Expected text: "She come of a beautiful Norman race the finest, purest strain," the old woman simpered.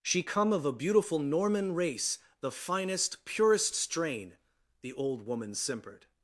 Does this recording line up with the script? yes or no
yes